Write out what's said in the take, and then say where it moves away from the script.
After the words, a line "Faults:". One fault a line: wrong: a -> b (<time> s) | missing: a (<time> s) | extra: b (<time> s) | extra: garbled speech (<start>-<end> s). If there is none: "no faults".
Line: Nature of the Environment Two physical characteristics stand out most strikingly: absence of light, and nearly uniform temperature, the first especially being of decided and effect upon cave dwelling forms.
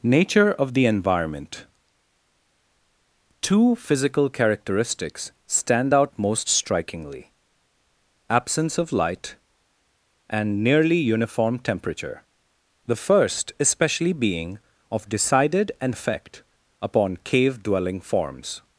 Nature of the Environment Two physical characteristics stand out most strikingly: absence of light, and nearly uniform temperature, the first especially being of decided and effect upon cave dwelling forms.
Faults:
no faults